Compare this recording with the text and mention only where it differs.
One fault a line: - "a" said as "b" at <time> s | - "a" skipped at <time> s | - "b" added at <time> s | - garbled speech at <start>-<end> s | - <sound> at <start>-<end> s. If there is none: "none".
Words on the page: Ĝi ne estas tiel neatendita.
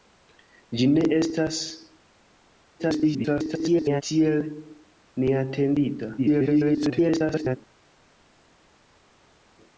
- garbled speech at 2.8-4.0 s
- garbled speech at 6.2-7.6 s